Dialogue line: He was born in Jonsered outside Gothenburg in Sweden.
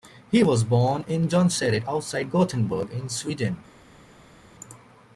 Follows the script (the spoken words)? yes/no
yes